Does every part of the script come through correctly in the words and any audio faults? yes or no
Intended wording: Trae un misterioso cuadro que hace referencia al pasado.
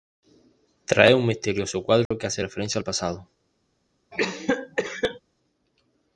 no